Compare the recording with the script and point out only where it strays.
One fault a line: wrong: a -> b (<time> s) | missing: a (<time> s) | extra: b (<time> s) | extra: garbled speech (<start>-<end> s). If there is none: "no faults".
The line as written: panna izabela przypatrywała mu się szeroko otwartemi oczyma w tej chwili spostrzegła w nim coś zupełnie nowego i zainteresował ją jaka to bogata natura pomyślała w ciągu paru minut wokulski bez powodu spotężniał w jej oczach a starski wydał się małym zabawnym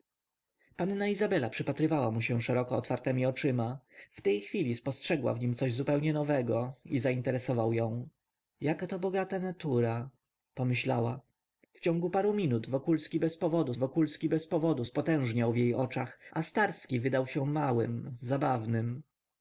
extra: wokulski bez powodu (13.8 s)